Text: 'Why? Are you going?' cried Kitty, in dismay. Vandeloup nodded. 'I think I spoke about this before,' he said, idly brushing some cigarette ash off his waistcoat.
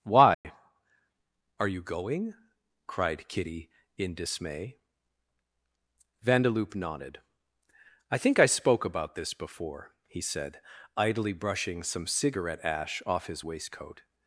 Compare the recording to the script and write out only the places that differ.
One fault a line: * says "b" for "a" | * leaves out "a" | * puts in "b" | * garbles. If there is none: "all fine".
all fine